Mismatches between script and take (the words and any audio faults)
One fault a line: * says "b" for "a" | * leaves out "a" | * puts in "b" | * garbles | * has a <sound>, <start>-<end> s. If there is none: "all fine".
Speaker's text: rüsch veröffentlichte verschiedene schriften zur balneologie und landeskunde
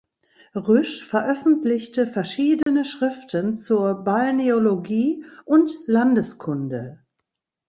* has a dropout, 2.6-2.7 s